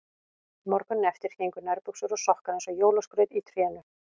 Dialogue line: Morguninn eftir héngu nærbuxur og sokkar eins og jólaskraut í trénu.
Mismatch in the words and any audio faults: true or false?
false